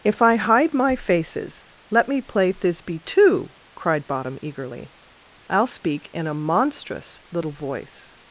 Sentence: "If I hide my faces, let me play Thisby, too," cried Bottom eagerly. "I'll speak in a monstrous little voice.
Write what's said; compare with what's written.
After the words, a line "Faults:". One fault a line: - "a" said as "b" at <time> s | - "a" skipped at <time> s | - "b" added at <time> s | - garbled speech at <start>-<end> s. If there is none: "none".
"If I hide my faces, let me play Thisby, too," cried Bottom eagerly. "I'll speak in a monstrous little voice.
Faults:
none